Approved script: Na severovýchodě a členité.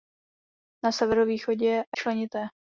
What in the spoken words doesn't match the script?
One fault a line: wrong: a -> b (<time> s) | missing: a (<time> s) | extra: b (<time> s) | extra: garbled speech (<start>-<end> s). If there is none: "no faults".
no faults